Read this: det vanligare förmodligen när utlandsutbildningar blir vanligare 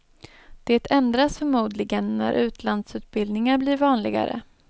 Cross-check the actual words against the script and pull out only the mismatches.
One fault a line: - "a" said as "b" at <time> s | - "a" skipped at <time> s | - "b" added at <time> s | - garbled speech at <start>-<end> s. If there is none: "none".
- "vanligare" said as "ändras" at 0.9 s